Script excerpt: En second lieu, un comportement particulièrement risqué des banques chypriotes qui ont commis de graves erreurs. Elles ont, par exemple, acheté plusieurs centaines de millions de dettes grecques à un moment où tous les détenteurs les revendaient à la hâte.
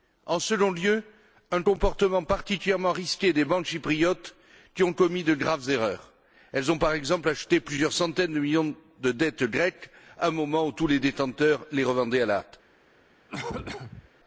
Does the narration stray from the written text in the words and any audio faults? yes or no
yes